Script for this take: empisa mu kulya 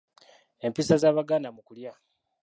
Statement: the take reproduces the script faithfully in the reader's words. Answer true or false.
false